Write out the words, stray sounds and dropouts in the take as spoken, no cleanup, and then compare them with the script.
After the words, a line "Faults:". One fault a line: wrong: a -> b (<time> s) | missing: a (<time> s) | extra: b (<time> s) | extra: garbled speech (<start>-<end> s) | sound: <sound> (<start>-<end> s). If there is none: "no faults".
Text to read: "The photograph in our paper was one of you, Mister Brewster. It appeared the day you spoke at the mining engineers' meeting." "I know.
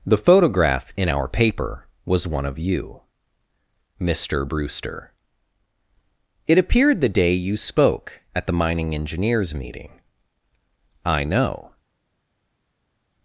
"The photograph in our paper was one of you, Mister Brewster. It appeared the day you spoke at the mining engineers' meeting." "I know.
Faults:
no faults